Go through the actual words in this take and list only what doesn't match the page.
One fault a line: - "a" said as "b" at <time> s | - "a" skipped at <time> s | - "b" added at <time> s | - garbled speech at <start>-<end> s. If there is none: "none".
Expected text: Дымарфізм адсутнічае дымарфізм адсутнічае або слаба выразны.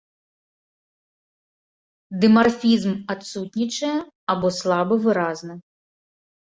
- "дымарфізм адсутнічае" skipped at 4.0 s